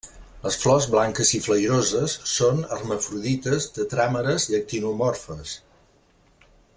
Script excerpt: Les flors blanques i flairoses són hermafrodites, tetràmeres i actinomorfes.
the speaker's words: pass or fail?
pass